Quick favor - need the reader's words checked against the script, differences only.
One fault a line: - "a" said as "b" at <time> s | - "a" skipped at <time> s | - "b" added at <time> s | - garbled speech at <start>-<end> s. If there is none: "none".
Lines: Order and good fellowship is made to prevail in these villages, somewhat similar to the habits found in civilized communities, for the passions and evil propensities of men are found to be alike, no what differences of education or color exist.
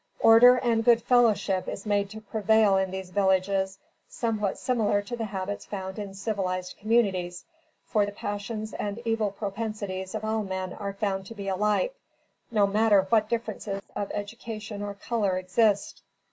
- "all" added at 10.2 s
- "matter" added at 12.6 s